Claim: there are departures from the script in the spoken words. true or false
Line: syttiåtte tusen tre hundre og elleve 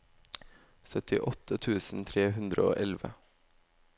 false